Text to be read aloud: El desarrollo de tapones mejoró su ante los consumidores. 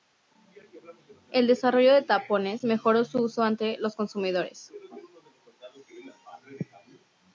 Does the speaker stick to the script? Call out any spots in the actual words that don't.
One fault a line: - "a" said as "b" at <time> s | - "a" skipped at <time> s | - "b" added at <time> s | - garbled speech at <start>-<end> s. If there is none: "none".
- "uso" added at 3.2 s